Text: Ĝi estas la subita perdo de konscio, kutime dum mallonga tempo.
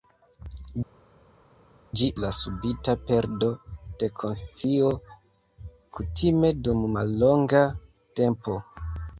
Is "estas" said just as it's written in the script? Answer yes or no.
no